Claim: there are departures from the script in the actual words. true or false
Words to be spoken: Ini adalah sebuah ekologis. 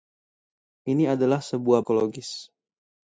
false